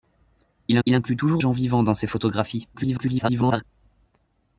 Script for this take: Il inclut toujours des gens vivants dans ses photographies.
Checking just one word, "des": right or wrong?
wrong